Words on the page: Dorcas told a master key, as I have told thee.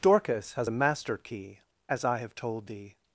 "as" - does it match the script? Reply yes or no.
yes